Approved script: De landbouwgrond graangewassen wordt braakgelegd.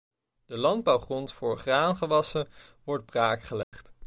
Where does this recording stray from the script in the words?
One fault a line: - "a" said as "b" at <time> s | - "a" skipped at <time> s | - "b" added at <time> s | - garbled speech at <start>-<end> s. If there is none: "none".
- "voor" added at 1.3 s